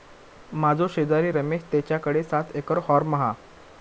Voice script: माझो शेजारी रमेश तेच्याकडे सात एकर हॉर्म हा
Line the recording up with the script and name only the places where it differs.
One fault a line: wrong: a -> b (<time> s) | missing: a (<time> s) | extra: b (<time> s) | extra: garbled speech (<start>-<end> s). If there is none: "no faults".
no faults